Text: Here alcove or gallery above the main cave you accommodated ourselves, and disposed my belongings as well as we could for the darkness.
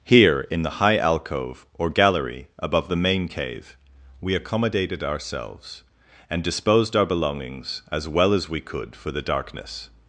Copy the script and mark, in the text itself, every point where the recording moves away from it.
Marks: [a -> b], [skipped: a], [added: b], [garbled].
Here [added: in the high] alcove or gallery above the main cave [you -> we] accommodated ourselves, and disposed [my -> our] belongings as well as we could for the darkness.